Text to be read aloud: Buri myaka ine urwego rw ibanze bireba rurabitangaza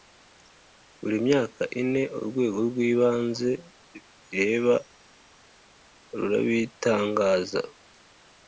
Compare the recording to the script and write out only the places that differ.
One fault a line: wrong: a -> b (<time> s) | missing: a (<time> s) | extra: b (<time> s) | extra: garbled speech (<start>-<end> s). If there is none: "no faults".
no faults